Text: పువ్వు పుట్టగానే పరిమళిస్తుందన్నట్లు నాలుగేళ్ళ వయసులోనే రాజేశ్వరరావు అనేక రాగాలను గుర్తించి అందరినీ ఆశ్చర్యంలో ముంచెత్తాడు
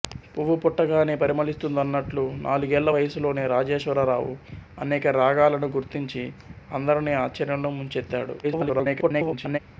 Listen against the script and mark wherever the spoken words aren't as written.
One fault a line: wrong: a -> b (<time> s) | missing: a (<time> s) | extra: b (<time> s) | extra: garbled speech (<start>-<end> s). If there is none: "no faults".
extra: garbled speech (8.4-9.6 s)